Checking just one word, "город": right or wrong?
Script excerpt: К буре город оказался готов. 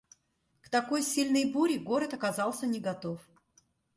right